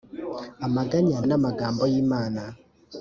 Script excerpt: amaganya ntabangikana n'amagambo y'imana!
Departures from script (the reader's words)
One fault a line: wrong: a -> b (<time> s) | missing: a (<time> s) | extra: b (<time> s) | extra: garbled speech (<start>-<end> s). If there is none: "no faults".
missing: ntabangikana (1.2 s)